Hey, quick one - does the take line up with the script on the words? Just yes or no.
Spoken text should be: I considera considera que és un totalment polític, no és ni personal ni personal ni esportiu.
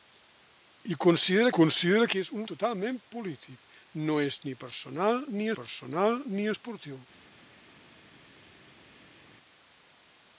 yes